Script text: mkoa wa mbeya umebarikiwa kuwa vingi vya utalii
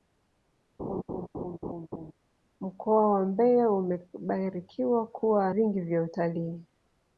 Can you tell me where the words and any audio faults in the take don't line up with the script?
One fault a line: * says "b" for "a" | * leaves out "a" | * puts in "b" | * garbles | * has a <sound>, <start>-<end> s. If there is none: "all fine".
* has a laugh, 0.8-2.1 s